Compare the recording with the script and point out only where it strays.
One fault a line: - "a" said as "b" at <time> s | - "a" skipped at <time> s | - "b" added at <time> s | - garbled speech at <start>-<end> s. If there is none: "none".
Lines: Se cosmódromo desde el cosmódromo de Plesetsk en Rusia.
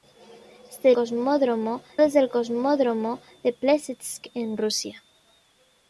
none